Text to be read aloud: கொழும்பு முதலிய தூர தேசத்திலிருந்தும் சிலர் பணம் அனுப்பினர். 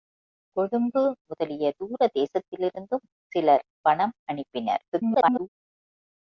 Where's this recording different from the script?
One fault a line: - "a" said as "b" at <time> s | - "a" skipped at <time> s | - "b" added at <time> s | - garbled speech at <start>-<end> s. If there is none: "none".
- garbled speech at 4.9-5.5 s